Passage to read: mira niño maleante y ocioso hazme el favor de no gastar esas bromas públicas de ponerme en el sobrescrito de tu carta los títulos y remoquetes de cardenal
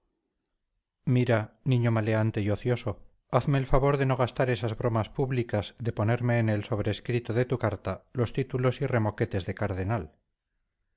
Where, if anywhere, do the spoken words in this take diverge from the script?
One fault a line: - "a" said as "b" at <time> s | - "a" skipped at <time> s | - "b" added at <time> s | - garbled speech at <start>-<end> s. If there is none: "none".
none